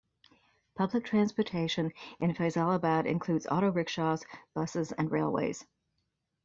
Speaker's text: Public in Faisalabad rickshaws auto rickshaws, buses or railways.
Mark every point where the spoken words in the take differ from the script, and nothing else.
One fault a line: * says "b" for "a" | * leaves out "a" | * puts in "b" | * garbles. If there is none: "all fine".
* puts in "transportation"
* says "includes" for "rickshaws"
* says "and" for "or"